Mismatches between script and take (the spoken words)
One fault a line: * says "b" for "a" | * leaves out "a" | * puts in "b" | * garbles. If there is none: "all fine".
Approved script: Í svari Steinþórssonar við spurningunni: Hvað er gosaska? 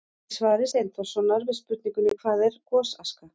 all fine